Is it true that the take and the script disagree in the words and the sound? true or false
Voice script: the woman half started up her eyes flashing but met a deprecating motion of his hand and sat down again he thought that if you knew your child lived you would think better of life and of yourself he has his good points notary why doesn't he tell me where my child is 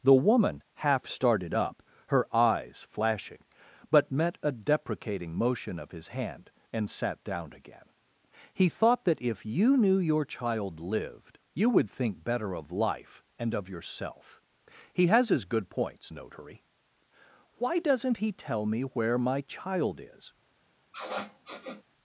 true